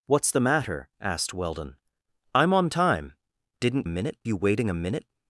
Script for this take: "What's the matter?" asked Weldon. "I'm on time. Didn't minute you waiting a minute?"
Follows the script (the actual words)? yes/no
yes